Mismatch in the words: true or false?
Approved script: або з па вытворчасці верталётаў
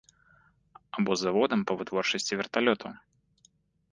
true